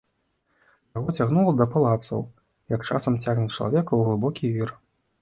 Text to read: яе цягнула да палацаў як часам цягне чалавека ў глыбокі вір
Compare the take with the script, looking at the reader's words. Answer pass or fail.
fail